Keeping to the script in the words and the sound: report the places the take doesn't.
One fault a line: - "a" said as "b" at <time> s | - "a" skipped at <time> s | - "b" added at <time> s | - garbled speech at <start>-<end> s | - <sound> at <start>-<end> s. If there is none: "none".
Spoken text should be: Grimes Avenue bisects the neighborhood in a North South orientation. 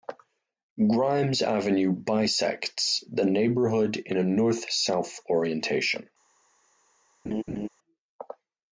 - laugh at 7.3-7.7 s